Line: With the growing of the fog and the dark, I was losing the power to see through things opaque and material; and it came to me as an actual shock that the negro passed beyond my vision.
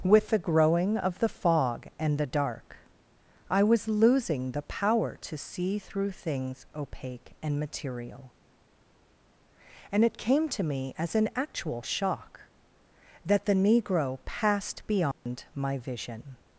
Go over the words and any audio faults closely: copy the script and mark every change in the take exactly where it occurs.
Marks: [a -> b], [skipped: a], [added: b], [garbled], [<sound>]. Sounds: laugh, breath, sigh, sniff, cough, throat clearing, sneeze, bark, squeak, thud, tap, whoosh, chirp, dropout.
With the growing of the fog and the dark, I was losing the power to see through things opaque and material; and it came to me as an actual shock that the negro passed beyond [dropout] my vision.